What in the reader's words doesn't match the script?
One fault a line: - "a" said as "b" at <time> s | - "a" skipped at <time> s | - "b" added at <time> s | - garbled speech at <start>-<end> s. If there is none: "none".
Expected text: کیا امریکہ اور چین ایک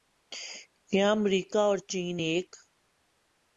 none